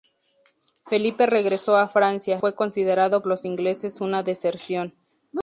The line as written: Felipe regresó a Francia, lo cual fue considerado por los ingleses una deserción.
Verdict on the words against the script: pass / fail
fail